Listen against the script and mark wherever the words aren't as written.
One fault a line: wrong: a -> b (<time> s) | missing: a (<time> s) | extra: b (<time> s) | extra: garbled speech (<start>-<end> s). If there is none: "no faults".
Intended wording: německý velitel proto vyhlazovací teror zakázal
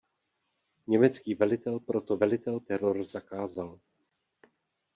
wrong: vyhlazovací -> velitel (2.2 s)